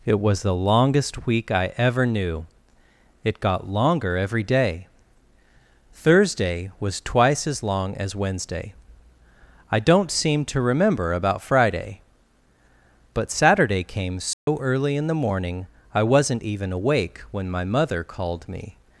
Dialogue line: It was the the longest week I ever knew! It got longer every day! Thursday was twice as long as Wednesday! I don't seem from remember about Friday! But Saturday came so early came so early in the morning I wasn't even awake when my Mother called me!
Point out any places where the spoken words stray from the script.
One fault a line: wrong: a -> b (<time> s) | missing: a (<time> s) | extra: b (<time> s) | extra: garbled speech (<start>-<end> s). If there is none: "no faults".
missing: the (0.6 s)
wrong: from -> to (10.4 s)
missing: came so early (14.9 s)